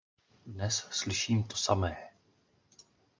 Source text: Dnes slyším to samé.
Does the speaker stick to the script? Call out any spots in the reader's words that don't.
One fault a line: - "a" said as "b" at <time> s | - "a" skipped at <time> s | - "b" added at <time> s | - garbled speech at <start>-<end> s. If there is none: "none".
none